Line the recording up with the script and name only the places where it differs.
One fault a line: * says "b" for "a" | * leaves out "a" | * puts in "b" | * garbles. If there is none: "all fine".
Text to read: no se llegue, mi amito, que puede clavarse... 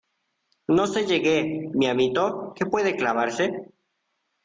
all fine